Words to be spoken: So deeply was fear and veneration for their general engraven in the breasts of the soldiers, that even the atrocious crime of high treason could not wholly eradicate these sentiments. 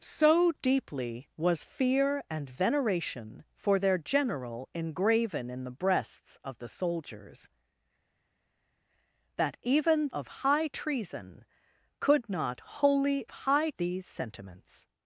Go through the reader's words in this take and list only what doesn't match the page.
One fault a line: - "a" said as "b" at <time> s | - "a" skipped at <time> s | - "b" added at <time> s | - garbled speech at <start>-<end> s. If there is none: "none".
- "the atrocious crime" skipped at 10.1 s
- "eradicate" said as "high" at 13.3 s